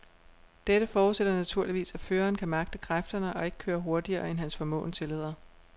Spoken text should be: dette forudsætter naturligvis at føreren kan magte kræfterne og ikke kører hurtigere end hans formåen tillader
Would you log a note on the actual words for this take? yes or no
no